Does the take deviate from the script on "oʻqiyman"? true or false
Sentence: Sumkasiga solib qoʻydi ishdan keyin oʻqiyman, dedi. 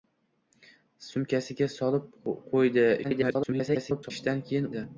true